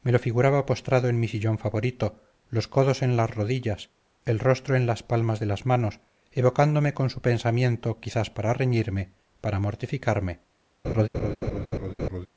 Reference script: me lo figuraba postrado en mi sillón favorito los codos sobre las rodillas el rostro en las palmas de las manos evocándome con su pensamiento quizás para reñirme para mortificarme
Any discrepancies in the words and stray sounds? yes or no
yes